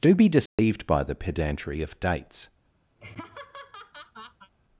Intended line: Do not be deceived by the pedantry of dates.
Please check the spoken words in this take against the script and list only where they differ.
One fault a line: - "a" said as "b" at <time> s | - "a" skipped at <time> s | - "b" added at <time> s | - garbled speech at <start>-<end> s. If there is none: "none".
- "not" skipped at 0.1 s